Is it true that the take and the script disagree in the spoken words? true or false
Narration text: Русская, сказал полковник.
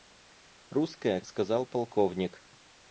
false